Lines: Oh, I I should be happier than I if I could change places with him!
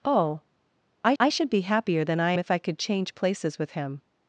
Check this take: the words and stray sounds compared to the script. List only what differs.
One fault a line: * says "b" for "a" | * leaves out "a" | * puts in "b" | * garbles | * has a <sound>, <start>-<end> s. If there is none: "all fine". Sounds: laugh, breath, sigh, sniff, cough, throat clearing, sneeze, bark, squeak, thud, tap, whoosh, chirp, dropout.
all fine